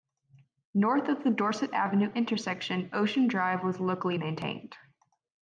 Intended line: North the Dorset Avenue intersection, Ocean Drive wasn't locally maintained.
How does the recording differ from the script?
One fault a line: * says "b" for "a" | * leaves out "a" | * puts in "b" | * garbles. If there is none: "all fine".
* puts in "of"
* says "was" for "wasn't"